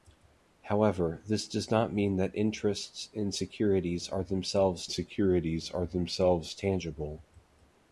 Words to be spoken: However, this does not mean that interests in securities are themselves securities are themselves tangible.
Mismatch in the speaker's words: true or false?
false